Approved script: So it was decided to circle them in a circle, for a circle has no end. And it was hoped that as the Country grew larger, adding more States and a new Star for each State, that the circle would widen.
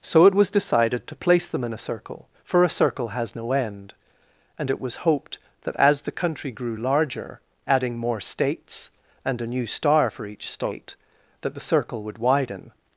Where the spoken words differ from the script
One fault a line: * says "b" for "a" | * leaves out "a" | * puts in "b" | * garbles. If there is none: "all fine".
* says "place" for "circle"